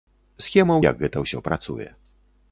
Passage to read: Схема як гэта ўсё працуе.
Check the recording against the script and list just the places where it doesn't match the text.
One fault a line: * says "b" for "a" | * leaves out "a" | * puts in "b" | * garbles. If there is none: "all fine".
all fine